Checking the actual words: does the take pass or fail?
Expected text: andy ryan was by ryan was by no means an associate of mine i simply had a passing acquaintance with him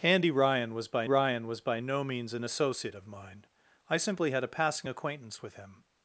pass